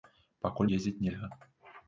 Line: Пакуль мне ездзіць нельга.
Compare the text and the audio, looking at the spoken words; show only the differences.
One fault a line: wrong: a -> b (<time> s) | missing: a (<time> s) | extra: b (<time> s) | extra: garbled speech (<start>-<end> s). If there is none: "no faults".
missing: мне (0.7 s)